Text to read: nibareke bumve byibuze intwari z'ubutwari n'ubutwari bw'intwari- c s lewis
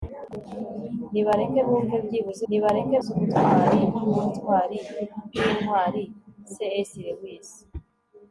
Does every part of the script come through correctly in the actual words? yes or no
no